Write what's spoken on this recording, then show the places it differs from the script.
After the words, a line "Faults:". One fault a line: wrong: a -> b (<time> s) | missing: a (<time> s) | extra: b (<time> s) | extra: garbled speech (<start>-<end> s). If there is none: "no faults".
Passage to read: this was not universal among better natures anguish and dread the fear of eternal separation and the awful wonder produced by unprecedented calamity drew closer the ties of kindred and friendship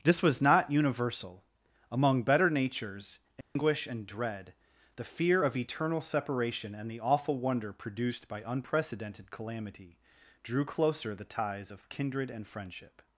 this was not universal among better natures anguish and dread the fear of eternal separation and the awful wonder produced by unprecedented calamity drew closer the ties of kindred and friendship
Faults:
no faults